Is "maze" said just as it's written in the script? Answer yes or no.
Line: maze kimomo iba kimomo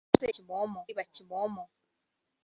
yes